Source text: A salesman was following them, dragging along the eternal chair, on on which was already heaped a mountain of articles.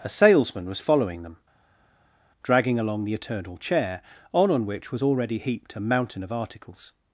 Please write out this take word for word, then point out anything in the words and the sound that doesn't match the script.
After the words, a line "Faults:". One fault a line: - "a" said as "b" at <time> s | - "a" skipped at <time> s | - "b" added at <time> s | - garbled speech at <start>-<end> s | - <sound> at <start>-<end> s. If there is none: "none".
A salesman was following them, dragging along the eternal chair, on on which was already heaped a mountain of articles.
Faults:
none